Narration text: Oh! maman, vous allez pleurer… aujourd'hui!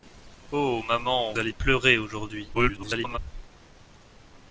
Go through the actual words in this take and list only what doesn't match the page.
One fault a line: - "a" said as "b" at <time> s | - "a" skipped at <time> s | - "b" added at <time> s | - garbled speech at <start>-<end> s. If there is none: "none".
- "vous" skipped at 1.3 s
- garbled speech at 2.5-3.2 s